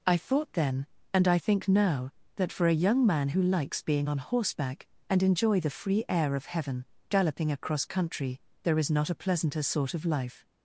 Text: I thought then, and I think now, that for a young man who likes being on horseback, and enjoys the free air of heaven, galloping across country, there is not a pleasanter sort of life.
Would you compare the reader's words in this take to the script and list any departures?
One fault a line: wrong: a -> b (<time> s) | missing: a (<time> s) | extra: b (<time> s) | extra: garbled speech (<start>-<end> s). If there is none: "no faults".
wrong: enjoys -> enjoy (5.2 s)